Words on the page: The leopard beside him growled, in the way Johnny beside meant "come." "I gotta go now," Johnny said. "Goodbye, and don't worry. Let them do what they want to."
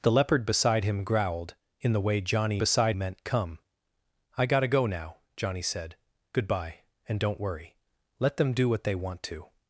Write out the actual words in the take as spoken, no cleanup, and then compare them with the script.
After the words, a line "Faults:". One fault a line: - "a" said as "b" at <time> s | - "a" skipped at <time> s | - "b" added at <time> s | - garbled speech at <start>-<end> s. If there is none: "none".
The leopard beside him growled, in the way Johnny beside meant "come." "I gotta go now," Johnny said. "Goodbye, and don't worry. Let them do what they want to."
Faults:
none